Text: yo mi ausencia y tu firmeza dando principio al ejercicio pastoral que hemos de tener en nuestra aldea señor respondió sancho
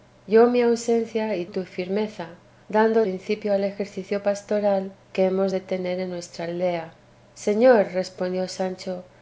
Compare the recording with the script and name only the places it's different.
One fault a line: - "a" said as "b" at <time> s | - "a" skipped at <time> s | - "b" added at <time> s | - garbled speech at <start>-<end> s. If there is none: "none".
none